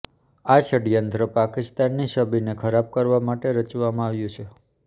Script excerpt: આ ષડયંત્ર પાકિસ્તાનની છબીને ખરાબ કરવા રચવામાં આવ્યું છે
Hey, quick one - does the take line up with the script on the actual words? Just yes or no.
no